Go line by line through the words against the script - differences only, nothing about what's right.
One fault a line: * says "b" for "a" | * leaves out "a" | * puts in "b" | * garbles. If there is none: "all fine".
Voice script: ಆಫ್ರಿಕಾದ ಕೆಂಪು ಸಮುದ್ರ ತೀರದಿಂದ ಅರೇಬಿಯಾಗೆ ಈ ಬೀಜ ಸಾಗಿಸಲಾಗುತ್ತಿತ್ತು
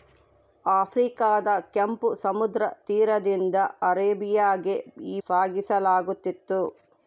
* leaves out "ಬೀಜ"